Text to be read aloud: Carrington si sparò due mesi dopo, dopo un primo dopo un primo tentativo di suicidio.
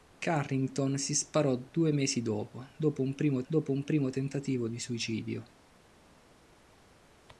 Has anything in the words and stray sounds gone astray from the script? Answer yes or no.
no